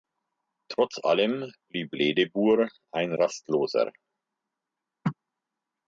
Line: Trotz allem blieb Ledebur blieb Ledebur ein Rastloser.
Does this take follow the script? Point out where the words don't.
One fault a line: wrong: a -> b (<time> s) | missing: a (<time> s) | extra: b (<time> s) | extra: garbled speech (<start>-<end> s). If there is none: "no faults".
missing: blieb Ledebur (2.7 s)